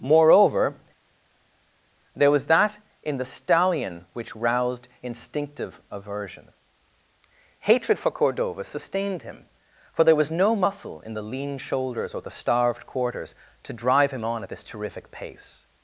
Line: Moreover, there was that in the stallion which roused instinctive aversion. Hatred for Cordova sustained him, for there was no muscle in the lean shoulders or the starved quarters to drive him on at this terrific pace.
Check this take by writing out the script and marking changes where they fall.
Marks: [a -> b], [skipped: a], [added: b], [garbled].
Moreover, there was that in the stallion which roused instinctive aversion. Hatred for Cordova sustained him, for there was no muscle in the lean shoulders or the starved quarters to drive him on at this terrific pace.